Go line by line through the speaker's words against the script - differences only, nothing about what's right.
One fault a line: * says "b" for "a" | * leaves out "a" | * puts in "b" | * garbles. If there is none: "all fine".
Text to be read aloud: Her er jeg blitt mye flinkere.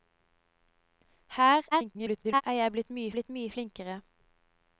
* garbles
* puts in "blitt mye"